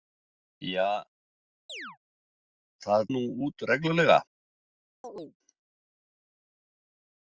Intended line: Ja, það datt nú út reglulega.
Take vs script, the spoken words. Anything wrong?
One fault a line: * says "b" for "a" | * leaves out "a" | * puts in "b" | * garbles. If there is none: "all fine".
* leaves out "datt"